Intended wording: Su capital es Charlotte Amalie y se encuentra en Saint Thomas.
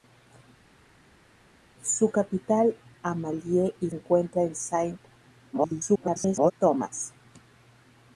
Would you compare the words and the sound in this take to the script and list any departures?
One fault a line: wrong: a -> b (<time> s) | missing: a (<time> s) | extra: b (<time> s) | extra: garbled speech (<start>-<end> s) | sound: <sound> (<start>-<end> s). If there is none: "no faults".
missing: es Charlotte (2.7 s)
missing: se (3.9 s)
extra: garbled speech (5.5-6.5 s)